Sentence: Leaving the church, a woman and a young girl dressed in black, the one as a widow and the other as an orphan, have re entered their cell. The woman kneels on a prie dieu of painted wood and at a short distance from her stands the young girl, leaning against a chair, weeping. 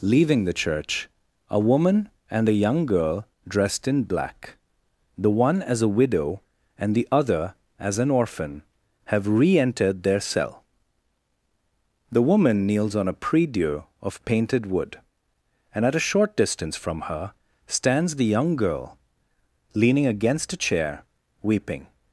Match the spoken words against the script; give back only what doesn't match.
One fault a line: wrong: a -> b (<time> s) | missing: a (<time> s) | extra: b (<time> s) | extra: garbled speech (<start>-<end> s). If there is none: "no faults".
no faults